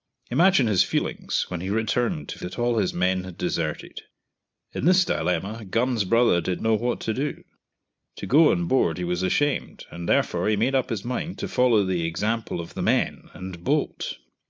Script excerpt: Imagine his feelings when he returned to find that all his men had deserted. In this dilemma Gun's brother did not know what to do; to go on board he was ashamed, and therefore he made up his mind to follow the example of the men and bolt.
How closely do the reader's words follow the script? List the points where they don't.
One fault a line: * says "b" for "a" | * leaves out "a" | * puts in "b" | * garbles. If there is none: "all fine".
* leaves out "find"
* leaves out "not"